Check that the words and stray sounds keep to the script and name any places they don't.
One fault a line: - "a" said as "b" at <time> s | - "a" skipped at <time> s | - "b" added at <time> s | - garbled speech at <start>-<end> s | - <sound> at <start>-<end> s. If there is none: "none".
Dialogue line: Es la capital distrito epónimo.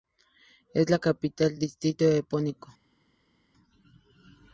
none